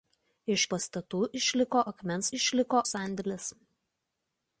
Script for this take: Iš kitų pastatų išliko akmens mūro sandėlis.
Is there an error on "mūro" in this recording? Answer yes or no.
yes